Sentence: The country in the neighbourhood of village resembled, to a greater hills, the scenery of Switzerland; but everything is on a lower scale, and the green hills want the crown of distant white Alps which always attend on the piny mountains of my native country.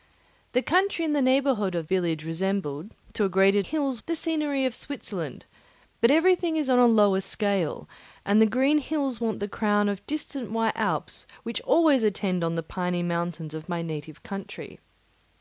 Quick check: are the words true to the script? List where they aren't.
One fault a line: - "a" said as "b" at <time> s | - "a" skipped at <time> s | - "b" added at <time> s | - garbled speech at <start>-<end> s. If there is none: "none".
none